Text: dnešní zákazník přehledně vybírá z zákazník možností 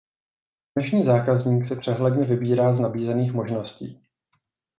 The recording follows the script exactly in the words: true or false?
false